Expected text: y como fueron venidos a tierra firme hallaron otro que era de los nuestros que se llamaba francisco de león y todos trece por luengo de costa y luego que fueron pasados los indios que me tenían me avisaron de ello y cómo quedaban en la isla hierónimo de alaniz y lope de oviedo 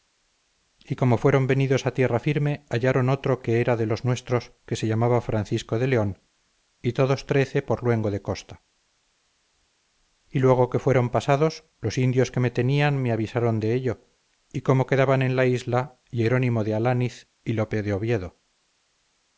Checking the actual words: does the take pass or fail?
pass